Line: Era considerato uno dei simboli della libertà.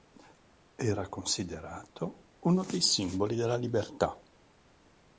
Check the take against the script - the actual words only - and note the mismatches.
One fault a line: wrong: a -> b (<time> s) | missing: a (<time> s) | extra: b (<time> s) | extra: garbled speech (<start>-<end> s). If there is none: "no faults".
no faults